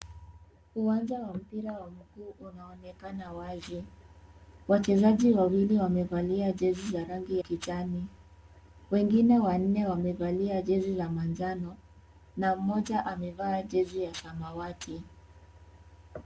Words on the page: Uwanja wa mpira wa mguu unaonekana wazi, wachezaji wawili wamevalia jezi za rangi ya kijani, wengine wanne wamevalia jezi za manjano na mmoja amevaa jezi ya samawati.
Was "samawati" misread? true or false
false